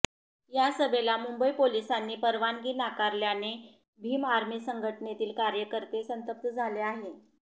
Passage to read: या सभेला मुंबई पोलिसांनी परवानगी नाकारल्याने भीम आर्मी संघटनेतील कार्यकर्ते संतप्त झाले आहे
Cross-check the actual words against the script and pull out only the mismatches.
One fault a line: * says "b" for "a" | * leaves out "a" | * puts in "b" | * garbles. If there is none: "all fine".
all fine